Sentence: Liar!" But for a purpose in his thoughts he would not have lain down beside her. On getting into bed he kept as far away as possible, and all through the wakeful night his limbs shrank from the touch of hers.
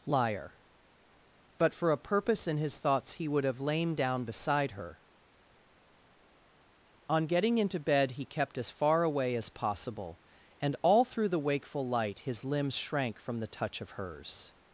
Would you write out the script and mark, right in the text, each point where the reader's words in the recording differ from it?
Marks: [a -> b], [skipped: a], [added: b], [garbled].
Liar!" But for a purpose in his thoughts he would [skipped: not] have lain down beside her. On getting into bed he kept as far away as possible, and all through the wakeful [night -> light] his limbs shrank from the touch of hers.